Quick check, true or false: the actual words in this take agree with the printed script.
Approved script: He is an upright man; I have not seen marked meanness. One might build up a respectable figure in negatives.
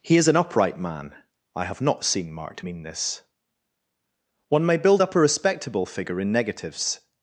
false